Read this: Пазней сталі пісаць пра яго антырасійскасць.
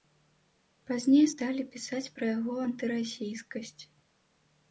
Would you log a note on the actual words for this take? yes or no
no